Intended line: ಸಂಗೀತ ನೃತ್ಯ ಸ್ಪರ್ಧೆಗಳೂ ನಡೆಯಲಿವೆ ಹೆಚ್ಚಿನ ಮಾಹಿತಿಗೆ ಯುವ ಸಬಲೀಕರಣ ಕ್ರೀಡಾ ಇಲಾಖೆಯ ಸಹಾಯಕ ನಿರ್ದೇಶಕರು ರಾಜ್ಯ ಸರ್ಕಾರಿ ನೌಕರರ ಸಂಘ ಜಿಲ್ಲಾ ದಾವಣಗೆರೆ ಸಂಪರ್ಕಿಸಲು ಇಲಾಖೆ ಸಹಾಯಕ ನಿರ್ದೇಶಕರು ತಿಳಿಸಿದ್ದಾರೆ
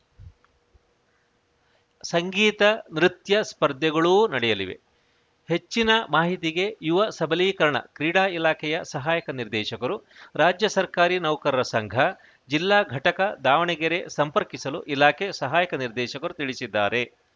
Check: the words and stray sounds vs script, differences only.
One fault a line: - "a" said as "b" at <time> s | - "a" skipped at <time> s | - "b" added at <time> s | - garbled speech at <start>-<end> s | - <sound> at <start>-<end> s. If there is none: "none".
- "ಘಟಕ" added at 12.9 s